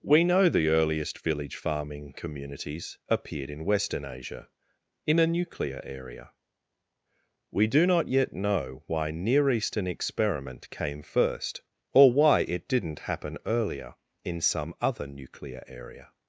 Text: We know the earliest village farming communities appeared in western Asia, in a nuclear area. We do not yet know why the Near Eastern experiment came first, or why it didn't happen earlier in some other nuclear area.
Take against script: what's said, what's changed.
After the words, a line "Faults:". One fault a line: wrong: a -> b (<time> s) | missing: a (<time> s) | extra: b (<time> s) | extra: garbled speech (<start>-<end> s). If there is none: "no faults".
We know the earliest village farming communities appeared in western Asia, in a nuclear area. We do not yet know why Near Eastern experiment came first, or why it didn't happen earlier in some other nuclear area.
Faults:
missing: the (9.1 s)